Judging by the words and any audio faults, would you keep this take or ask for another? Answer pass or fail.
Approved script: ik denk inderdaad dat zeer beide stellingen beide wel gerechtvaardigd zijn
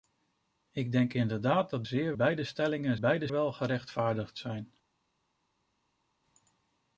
pass